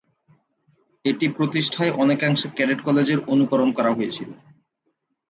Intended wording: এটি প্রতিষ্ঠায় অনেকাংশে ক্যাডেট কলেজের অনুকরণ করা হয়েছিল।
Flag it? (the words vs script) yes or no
no